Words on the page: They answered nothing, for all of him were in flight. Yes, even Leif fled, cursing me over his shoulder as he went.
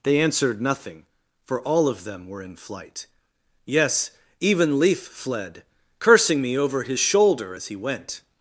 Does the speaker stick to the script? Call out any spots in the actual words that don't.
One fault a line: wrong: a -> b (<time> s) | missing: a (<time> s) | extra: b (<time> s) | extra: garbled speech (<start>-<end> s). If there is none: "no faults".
wrong: him -> them (2.0 s)